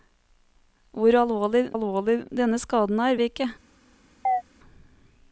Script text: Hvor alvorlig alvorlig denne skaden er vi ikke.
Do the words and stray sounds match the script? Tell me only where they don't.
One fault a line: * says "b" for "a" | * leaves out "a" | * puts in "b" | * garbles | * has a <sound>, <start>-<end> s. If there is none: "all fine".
* has a chirp, 4.2-4.4 s